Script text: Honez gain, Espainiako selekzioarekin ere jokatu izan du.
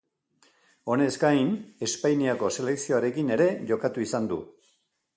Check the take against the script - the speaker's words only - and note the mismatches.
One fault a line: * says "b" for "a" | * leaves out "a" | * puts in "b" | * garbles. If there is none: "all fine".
all fine